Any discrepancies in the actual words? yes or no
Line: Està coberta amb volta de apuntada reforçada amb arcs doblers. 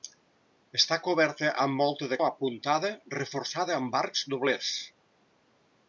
no